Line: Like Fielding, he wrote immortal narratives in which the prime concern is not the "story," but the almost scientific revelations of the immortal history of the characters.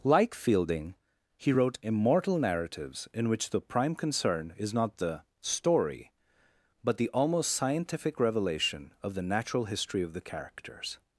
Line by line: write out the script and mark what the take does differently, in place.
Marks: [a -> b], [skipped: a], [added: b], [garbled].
Like Fielding, he wrote immortal narratives in which the prime concern is not the "story," but the almost scientific [revelations -> revelation] of the [immortal -> natural] history of the characters.